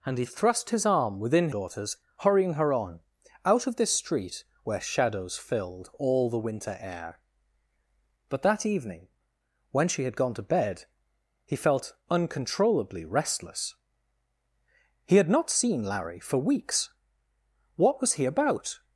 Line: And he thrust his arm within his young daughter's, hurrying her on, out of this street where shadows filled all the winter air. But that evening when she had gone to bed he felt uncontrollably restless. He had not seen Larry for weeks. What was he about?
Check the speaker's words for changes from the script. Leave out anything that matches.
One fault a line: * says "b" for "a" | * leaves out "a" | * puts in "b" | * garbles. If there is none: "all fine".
* leaves out "his young"